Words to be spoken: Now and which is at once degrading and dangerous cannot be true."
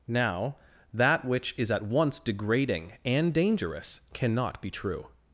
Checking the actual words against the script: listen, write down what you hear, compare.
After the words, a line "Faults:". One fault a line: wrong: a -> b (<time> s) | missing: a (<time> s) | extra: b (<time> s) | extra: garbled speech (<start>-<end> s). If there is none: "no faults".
Now that which is at once degrading and dangerous cannot be true."
Faults:
wrong: and -> that (0.9 s)